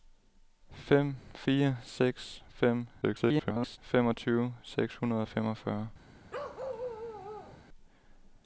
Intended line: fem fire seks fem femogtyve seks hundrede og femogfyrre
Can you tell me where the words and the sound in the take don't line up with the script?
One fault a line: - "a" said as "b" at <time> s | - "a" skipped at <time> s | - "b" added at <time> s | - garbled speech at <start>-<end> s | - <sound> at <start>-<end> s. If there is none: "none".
- garbled speech at 3.0-3.8 s
- bark at 6.3-7.6 s